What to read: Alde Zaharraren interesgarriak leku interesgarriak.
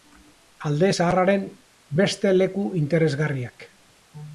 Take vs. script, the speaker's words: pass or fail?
fail